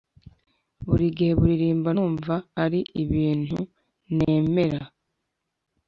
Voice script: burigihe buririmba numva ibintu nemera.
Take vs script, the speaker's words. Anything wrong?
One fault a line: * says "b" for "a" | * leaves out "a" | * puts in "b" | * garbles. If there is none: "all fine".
* puts in "ari"